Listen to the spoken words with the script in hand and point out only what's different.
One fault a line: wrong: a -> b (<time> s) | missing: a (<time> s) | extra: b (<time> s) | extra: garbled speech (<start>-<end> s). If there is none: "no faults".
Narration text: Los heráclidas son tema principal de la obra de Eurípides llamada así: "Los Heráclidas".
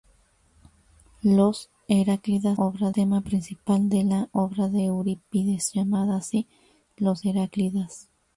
wrong: son -> obra (2.6 s)